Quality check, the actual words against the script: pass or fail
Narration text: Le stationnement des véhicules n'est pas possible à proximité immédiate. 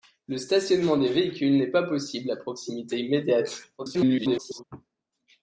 fail